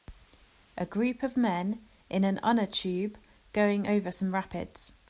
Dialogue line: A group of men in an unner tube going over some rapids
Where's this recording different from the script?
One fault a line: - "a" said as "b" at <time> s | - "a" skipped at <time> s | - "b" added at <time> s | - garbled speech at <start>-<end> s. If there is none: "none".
none